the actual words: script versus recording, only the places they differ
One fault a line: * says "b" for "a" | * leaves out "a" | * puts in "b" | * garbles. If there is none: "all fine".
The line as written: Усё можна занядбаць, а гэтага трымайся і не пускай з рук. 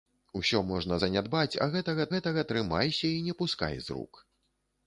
* puts in "гэтага"